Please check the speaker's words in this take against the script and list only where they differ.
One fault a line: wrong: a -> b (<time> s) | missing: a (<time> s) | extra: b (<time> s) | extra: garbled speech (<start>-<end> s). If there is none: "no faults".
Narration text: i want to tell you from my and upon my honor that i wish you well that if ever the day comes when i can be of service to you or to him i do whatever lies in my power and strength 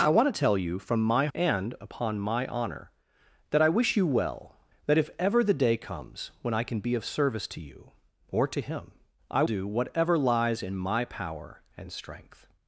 no faults